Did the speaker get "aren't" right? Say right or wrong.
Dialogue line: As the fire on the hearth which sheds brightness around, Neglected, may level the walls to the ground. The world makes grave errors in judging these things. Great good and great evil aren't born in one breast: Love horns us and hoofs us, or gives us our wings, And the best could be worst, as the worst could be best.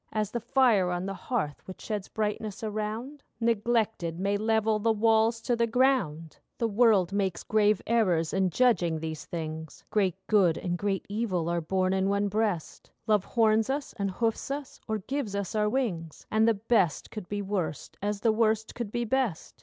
wrong